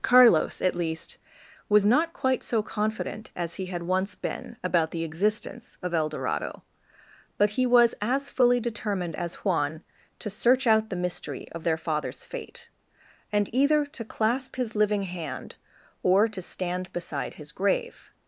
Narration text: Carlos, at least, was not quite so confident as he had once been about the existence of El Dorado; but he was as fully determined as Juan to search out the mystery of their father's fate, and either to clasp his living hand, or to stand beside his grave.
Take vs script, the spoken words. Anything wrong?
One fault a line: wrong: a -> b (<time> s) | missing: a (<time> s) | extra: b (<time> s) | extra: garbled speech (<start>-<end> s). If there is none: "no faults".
no faults